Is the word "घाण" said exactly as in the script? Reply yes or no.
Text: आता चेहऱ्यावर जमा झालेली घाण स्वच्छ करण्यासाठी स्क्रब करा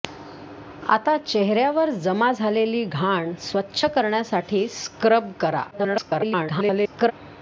yes